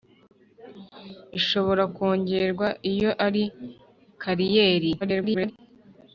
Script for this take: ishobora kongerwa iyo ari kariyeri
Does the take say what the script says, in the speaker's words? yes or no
no